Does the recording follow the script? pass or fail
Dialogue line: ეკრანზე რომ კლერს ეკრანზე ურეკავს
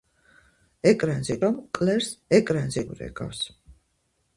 pass